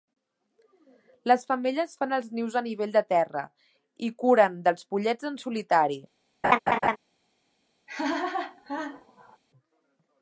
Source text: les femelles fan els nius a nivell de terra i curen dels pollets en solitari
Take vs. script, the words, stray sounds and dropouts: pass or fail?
fail